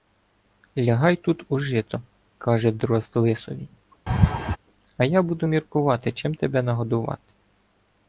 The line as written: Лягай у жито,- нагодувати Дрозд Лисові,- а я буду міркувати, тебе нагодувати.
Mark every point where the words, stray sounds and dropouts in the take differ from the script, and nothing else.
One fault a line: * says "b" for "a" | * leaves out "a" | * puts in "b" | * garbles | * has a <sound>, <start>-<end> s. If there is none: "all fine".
* puts in "тут"
* says "каже" for "нагодувати"
* has a laugh, 4.1-4.6 s
* puts in "чим"